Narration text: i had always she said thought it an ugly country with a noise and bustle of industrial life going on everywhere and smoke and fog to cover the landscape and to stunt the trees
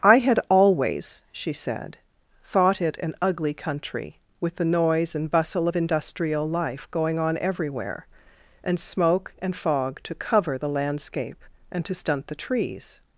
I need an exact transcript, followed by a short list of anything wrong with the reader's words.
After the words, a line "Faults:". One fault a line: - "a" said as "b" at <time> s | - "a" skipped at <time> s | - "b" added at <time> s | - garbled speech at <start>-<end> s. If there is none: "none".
i had always she said thought it an ugly country with the noise and bustle of industrial life going on everywhere and smoke and fog to cover the landscape and to stunt the trees
Faults:
- "a" said as "the" at 4.5 s